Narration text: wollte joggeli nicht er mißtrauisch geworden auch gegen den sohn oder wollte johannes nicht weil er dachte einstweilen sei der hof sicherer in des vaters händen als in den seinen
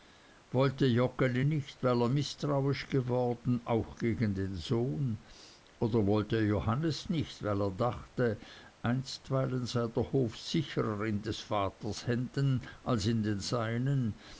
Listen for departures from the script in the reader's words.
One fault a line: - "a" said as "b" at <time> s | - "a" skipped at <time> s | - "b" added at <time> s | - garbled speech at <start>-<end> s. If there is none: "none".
- "weil" added at 1.8 s